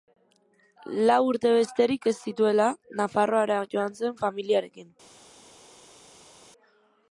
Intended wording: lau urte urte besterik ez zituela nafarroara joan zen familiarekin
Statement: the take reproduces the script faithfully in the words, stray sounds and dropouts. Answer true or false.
false